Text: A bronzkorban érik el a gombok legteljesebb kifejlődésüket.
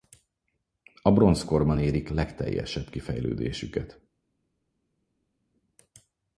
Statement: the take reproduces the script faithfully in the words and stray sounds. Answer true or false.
false